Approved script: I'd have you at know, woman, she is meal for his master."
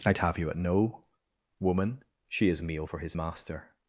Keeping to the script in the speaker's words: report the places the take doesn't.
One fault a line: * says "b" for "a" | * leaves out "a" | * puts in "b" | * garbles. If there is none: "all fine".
all fine